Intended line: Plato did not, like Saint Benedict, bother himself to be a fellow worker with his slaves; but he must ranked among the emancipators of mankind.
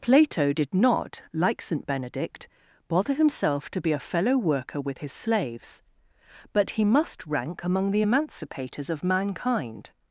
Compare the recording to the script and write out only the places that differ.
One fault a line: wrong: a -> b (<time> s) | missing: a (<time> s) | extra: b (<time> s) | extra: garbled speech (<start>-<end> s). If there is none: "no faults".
wrong: ranked -> rank (7.3 s)